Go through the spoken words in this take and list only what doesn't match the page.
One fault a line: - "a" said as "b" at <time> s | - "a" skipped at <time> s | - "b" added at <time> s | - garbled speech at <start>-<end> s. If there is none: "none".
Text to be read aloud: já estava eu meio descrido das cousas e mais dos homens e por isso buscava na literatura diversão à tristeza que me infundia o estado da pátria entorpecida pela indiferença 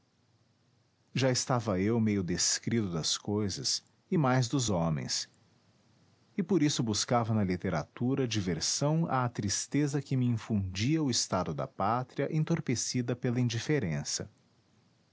none